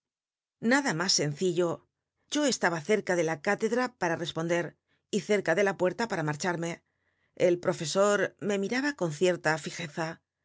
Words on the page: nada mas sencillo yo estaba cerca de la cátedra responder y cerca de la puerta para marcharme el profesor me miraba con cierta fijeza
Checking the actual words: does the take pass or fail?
fail